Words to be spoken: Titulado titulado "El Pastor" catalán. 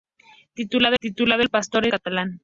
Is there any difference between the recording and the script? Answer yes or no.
no